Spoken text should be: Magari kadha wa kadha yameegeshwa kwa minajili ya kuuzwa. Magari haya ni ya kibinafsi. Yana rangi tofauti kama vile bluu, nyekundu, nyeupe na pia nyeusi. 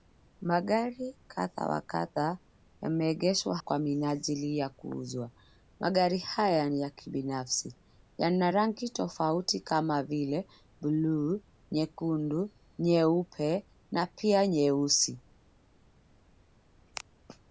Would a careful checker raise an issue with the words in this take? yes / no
no